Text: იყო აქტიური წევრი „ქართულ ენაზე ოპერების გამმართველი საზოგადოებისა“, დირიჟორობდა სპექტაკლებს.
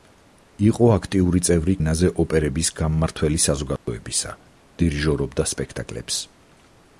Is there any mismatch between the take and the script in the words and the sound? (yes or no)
yes